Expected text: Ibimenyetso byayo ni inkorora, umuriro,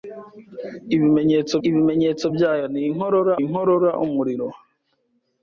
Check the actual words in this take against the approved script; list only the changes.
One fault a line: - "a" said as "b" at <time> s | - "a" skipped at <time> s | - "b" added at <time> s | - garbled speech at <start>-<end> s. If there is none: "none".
- "ibimenyetso" added at 1.7 s
- "inkorora" added at 3.4 s